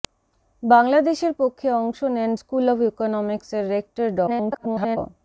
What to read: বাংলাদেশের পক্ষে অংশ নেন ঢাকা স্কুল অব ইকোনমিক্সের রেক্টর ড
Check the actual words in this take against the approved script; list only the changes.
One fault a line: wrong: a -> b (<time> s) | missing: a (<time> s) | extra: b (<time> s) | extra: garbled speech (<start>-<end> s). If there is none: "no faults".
missing: ঢাকা (2.3 s)
extra: garbled speech (4.3-5.0 s)